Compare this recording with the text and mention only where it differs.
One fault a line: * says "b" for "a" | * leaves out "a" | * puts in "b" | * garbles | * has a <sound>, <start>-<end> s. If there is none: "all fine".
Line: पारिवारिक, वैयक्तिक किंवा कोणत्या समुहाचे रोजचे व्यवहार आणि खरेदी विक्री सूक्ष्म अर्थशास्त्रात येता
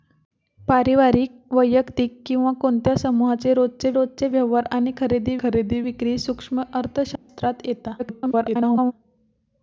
* puts in "रोजचे"
* puts in "खरेदी"
* has a dropout, 7.2-7.3 s
* garbles